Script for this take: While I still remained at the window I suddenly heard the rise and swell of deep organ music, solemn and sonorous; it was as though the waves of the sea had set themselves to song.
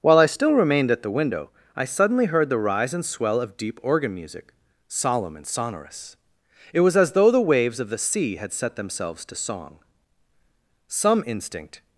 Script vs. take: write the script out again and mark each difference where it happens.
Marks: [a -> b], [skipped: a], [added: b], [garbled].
While I still remained at the window I suddenly heard the rise and swell of deep organ music, solemn and sonorous; it was as though the waves of the sea had set themselves to song. [added: Some instinct]